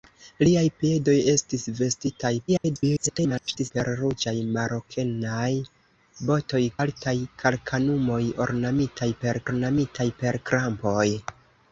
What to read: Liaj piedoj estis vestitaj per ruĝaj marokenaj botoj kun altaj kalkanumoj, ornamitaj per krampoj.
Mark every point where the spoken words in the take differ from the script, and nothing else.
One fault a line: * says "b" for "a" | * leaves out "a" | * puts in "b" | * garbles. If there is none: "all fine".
* garbles
* leaves out "kun"
* puts in "ornamitaj per"